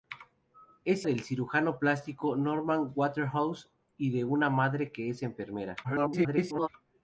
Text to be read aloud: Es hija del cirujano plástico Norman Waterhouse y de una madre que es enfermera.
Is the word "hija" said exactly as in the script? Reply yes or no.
no